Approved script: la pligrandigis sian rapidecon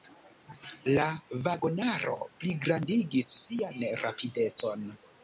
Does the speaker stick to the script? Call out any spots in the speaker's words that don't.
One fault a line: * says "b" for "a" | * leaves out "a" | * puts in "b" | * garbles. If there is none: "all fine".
* puts in "vagonaro"